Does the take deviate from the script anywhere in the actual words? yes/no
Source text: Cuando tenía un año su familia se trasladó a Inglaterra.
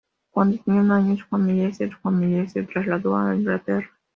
yes